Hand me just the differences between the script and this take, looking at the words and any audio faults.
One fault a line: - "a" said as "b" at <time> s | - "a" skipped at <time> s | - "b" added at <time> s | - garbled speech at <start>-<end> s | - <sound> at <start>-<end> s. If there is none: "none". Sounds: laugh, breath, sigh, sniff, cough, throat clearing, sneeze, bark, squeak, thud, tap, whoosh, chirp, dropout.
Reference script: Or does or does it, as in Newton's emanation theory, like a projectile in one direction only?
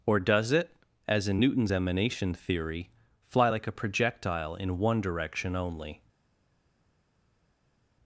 - "or does" skipped at 0.5 s
- "fly" added at 3.2 s